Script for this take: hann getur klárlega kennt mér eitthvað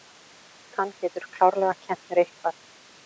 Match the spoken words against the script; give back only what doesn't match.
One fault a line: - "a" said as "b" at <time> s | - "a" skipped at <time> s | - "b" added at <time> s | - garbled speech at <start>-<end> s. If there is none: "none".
none